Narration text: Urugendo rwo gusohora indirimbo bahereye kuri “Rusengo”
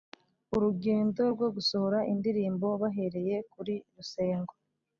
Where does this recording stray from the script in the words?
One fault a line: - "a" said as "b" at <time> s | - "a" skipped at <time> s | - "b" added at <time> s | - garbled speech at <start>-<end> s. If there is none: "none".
none